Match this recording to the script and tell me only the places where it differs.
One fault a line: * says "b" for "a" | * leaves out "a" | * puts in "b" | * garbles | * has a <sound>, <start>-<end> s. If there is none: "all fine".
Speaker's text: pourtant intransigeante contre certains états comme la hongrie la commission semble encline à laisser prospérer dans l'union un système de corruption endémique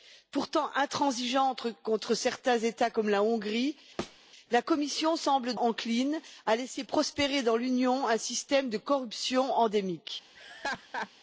* has a thud, 4.0-4.2 s
* has a laugh, 10.3-11.1 s